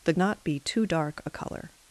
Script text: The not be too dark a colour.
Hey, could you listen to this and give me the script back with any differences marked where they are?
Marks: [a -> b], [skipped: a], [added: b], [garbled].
The not be too dark a colour.